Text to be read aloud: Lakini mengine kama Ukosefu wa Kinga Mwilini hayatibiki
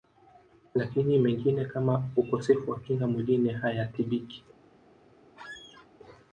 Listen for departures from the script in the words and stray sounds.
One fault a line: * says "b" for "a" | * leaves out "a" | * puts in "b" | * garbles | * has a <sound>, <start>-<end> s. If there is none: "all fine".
* has a squeak, 5.4-5.9 s